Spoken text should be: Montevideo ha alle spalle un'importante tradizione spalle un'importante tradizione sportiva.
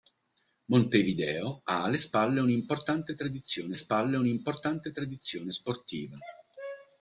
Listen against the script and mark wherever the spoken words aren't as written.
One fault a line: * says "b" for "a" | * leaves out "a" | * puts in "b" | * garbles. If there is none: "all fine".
all fine